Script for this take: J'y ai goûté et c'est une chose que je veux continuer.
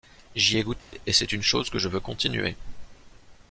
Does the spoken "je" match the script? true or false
true